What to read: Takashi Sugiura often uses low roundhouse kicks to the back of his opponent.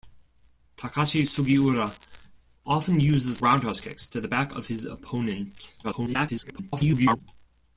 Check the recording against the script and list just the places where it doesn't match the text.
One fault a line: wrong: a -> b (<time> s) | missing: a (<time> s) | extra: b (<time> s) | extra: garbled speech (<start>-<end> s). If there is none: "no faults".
missing: low (3.4 s)
extra: garbled speech (5.8-7.2 s)